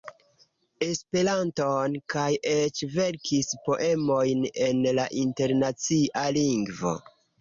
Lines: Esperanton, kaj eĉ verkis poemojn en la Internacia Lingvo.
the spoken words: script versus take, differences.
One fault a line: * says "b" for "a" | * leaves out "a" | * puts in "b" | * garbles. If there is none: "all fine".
all fine